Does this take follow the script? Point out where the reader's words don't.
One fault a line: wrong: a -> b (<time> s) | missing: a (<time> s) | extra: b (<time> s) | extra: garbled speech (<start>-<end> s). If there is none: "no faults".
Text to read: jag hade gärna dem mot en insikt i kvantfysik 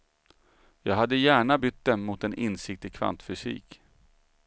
extra: bytt (1.5 s)